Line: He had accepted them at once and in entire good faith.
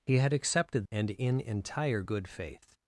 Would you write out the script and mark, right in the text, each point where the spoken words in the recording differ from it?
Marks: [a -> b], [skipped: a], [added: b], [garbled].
He had accepted [skipped: them at once] and in entire good faith.